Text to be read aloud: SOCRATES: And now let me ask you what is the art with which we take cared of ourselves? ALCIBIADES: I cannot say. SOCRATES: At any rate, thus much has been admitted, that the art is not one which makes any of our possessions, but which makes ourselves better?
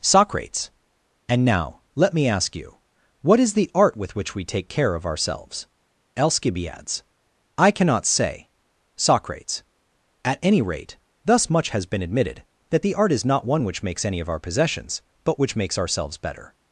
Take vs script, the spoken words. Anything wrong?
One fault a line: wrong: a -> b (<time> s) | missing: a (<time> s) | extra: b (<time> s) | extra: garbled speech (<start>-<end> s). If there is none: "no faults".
wrong: cared -> care (4.7 s)